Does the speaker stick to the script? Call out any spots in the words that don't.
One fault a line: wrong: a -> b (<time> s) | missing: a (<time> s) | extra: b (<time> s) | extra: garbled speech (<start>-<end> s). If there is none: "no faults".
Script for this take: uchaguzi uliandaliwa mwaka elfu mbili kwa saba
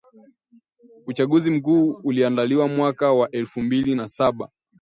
extra: mkuu (1.5 s)
extra: wa (3.1 s)
wrong: kwa -> na (3.9 s)